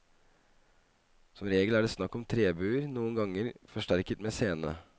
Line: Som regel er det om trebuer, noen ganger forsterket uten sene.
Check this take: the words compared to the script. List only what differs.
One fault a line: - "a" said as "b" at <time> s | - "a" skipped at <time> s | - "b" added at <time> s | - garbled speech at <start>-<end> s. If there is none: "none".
- "snakk" added at 1.9 s
- "uten" said as "med" at 4.2 s